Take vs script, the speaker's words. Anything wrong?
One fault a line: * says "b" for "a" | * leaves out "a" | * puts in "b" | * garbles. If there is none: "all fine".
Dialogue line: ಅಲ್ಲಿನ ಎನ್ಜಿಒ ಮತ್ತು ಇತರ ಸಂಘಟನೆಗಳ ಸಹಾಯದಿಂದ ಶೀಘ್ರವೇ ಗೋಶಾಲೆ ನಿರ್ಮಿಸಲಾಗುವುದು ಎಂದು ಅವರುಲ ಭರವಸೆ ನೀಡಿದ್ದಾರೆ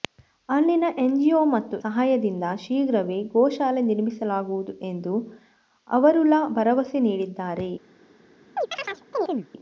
* leaves out "ಇತರ ಸಂಘಟನೆಗಳ"